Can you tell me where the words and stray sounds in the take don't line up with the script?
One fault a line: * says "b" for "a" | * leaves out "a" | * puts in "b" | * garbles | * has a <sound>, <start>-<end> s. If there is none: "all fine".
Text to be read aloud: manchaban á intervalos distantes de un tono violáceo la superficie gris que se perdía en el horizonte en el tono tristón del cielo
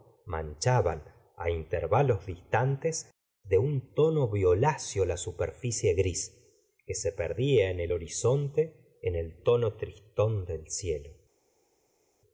all fine